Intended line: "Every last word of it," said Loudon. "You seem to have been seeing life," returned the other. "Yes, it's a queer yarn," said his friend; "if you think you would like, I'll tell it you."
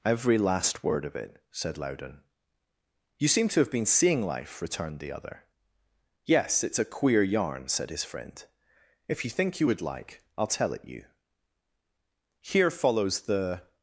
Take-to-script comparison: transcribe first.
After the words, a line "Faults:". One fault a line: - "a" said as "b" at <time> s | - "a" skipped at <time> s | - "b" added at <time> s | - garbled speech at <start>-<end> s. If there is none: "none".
"Every last word of it," said Loudon. "You seem to have been seeing life," returned the other. "Yes, it's a queer yarn," said his friend; "if you think you would like, I'll tell it you." Here follows the
Faults:
- "Here follows the" added at 12.4 s